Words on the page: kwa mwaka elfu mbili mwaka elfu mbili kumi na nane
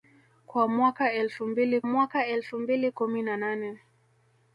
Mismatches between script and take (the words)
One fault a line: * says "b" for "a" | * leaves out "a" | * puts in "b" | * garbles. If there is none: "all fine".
all fine